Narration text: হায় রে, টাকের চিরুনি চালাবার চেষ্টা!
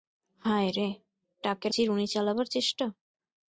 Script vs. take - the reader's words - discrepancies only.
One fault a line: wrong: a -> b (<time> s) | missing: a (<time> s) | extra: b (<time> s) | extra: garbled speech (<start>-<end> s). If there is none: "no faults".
no faults